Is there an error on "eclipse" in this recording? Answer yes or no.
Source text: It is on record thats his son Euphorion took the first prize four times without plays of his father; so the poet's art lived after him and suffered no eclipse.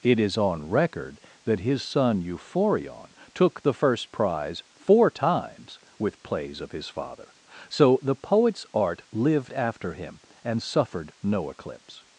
no